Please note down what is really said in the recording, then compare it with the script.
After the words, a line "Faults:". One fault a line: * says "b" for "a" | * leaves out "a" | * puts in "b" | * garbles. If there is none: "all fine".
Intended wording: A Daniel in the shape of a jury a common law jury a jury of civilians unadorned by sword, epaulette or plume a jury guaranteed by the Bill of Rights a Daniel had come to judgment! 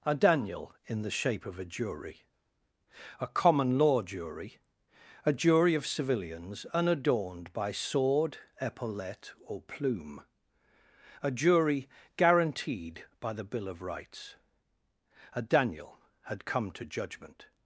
A Daniel in the shape of a jury a common law jury a jury of civilians unadorned by sword, epaulette or plume a jury guaranteed by the Bill of Rights a Daniel had come to judgment!
Faults:
all fine